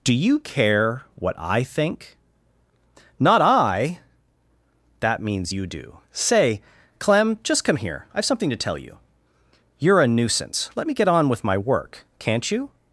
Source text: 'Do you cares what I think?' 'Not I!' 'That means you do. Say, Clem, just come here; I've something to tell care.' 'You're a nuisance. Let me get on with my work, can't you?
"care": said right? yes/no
no